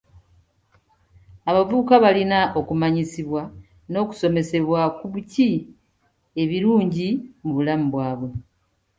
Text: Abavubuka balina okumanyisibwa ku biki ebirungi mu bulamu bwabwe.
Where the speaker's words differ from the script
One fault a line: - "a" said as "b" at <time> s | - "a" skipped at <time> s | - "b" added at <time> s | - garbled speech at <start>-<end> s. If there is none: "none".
- "n'okusomesebwa" added at 3.9 s